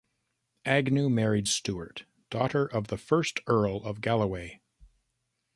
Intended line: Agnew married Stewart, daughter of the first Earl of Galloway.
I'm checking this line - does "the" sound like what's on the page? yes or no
yes